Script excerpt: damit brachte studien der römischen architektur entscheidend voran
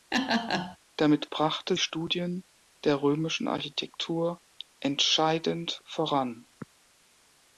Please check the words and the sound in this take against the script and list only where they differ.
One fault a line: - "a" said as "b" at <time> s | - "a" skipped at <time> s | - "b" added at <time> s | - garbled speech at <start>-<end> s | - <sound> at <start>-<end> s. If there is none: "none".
- laugh at 0.1-0.8 s